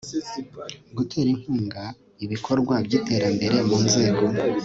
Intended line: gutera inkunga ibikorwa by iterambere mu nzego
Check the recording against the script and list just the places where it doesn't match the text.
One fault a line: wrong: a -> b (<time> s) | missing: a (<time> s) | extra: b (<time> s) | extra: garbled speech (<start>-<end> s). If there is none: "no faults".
no faults